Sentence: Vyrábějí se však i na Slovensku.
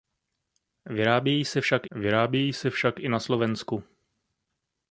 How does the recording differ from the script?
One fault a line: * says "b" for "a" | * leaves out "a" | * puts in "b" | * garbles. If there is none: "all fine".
* puts in "vyrábějí se však"